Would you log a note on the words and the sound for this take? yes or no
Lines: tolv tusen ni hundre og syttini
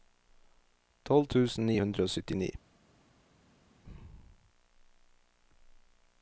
no